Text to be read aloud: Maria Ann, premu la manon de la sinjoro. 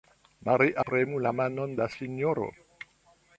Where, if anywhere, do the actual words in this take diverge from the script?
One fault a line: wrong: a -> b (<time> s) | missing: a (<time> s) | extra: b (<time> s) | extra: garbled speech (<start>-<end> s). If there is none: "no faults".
missing: Ann (0.8 s)
missing: de (1.8 s)